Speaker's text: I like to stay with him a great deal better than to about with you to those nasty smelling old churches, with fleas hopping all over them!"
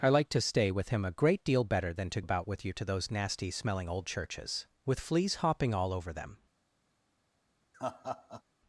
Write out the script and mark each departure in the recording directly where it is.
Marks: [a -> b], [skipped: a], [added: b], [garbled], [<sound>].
I like to stay with him a great deal better than to about with you to those nasty smelling old churches, with fleas hopping all over them!" [laugh]